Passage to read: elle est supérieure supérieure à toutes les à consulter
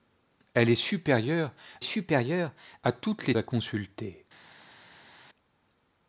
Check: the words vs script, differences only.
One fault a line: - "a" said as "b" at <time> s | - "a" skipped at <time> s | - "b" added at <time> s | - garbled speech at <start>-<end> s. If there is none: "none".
none